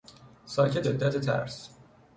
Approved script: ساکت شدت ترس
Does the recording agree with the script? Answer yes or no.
yes